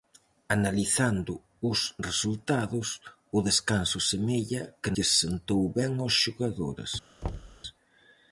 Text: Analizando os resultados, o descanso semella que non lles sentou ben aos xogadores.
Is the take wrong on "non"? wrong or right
wrong